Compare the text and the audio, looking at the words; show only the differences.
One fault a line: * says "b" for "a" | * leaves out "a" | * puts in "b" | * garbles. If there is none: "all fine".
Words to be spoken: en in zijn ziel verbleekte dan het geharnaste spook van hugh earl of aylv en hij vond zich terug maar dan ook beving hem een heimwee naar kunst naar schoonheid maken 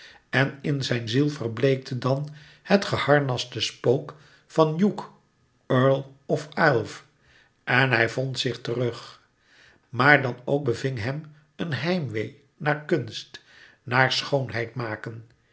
all fine